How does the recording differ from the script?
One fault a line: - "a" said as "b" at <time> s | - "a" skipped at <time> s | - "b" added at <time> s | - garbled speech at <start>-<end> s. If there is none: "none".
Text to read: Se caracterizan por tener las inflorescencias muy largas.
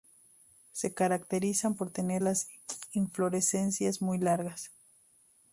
none